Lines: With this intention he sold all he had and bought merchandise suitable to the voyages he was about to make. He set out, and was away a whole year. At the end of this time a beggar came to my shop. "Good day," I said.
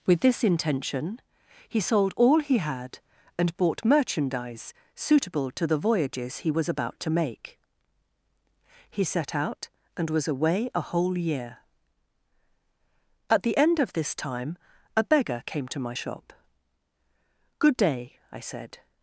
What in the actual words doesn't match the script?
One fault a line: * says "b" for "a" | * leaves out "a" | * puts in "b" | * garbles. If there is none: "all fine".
all fine